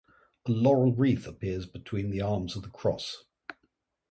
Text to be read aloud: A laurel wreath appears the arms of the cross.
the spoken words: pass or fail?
fail